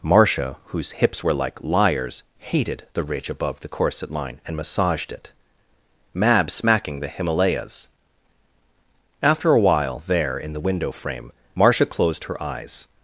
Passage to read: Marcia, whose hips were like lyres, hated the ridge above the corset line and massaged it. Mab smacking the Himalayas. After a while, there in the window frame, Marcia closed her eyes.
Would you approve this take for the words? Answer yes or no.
yes